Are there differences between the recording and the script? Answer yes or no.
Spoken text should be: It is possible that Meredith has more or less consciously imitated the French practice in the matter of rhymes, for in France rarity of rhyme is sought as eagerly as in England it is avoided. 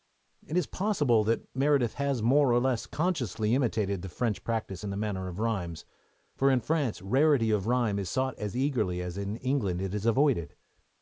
no